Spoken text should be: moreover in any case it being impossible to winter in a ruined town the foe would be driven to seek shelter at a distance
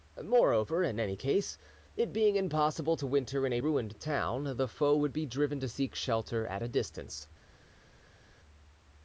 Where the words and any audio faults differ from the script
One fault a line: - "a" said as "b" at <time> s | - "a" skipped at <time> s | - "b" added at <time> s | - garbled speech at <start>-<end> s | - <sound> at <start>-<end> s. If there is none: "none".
none